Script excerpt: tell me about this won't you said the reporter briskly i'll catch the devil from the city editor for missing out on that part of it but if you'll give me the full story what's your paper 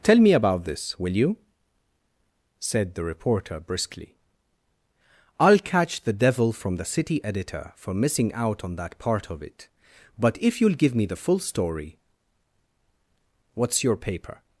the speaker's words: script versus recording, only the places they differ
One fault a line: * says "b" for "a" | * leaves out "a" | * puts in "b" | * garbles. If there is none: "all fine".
* says "will" for "won't"